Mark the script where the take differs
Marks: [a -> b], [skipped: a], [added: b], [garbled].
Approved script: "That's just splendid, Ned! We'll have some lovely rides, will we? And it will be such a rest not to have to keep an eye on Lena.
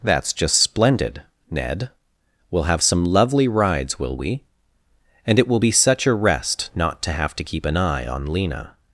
"That's just splendid, Ned! We'll have some lovely rides, will we? And it will be such a rest not to have to keep an eye on Lena.